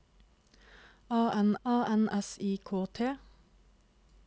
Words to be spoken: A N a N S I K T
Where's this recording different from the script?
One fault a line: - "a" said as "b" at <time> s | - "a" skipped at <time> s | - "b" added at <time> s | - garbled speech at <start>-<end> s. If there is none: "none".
none